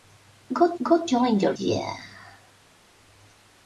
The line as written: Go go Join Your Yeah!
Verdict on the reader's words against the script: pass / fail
pass